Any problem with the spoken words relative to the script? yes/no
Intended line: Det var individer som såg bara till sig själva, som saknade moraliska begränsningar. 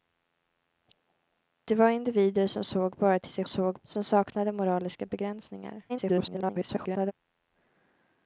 yes